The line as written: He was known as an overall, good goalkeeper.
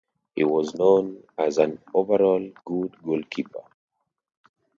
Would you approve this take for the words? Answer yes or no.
yes